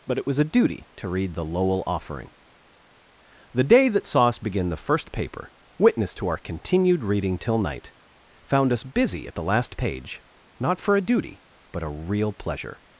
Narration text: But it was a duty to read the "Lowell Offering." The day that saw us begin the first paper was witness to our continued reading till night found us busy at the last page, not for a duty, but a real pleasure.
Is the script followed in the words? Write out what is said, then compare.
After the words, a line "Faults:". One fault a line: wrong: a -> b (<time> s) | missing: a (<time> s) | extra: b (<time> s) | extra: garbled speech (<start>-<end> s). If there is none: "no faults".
But it was a duty to read the "Lowell Offering." The day that saw us begin the first paper witness to our continued reading till night found us busy at the last page, not for a duty, but a real pleasure.
Faults:
missing: was (5.5 s)